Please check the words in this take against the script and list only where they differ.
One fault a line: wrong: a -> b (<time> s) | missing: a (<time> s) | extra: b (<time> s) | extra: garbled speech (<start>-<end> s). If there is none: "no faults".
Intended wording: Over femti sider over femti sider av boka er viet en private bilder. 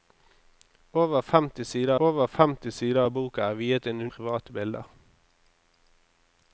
no faults